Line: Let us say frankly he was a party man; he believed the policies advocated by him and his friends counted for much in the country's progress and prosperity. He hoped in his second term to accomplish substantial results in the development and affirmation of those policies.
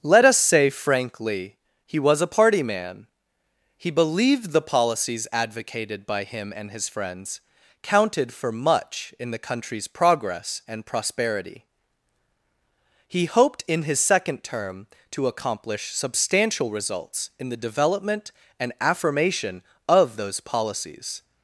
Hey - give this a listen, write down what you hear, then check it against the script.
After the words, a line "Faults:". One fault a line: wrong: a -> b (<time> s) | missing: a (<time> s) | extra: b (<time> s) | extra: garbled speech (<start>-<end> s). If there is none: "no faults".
Let us say frankly he was a party man; he believed the policies advocated by him and his friends counted for much in the country's progress and prosperity. He hoped in his second term to accomplish substantial results in the development and affirmation of those policies.
Faults:
no faults